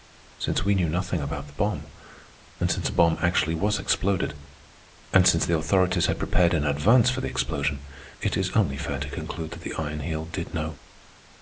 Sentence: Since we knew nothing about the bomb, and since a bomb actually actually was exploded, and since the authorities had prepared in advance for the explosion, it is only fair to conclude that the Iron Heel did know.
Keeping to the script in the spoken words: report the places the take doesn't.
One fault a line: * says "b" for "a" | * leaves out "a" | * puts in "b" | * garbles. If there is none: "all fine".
* leaves out "actually"